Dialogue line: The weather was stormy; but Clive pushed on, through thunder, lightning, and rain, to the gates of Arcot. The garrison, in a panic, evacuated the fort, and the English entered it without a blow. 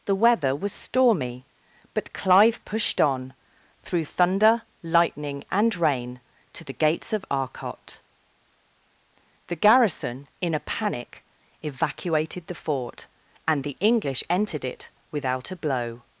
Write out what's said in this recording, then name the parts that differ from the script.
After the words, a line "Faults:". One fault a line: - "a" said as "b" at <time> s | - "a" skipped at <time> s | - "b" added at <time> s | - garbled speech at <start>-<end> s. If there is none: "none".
The weather was stormy; but Clive pushed on, through thunder, lightning, and rain, to the gates of Arcot. The garrison, in a panic, evacuated the fort, and the English entered it without a blow.
Faults:
none